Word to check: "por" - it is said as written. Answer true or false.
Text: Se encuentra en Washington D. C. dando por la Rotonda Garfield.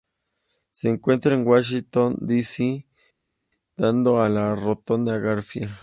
false